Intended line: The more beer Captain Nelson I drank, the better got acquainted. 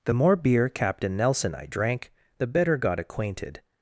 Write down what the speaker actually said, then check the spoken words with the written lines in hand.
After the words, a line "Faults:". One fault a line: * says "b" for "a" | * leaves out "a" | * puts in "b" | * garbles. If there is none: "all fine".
The more beer Captain Nelson I drank, the better got acquainted.
Faults:
all fine